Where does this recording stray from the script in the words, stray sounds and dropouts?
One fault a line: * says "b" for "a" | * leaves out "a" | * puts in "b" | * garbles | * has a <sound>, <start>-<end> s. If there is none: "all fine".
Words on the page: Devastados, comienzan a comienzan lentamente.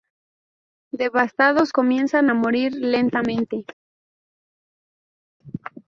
* says "morir" for "comienzan"